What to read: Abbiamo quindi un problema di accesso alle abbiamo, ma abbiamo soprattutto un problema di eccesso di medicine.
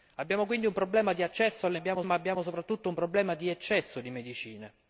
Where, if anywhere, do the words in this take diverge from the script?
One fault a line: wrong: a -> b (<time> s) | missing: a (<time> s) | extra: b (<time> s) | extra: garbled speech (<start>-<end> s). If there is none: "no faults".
no faults